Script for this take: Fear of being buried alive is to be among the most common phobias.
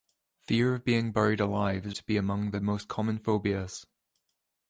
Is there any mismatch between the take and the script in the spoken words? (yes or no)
no